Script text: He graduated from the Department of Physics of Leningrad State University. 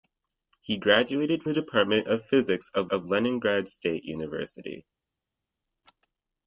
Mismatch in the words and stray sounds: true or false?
true